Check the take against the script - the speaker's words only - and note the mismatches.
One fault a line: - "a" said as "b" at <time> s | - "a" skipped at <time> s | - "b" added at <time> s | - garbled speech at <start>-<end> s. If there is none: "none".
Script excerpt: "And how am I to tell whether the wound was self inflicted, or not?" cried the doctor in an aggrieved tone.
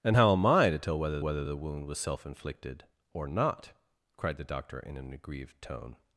- "whether" added at 1.2 s